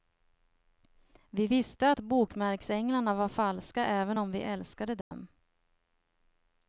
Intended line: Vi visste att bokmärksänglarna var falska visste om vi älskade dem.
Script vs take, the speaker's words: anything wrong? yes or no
yes